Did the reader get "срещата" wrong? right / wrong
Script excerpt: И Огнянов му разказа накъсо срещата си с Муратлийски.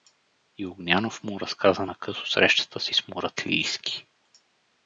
right